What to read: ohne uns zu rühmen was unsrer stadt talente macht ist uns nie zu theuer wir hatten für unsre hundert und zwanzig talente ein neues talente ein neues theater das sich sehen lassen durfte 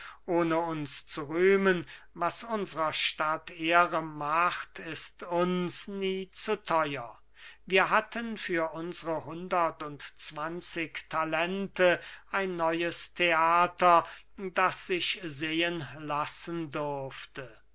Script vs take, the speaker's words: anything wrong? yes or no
yes